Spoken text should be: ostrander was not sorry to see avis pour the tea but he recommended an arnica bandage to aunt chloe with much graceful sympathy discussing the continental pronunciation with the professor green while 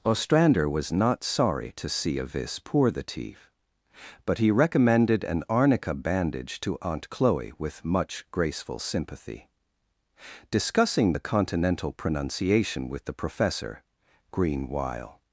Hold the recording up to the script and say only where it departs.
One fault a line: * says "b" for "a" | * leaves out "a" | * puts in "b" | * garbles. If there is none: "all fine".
all fine